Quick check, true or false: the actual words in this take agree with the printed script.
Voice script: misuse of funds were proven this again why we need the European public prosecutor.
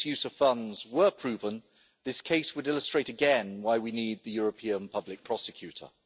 false